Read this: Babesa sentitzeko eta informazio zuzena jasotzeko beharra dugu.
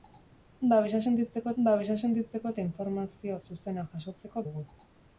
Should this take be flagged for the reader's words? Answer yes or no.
yes